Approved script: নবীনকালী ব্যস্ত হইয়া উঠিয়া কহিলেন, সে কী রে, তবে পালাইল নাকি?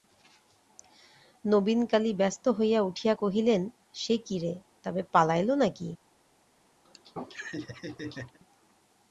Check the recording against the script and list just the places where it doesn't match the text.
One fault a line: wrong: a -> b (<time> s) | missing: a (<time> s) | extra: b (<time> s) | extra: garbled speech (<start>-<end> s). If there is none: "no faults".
no faults